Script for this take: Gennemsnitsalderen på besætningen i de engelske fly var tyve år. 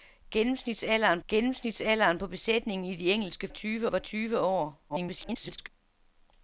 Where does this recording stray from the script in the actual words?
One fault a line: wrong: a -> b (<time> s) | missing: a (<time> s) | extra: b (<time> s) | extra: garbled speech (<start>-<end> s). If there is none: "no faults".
extra: gennemsnitsalderen (1.3 s)
wrong: fly -> tyve (3.5 s)
extra: garbled speech (4.9-5.7 s)